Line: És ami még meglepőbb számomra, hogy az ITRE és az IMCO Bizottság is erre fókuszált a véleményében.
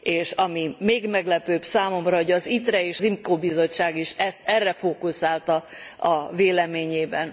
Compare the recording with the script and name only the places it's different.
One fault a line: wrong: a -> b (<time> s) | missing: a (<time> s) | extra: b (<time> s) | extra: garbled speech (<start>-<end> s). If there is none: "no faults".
missing: az (3.0 s)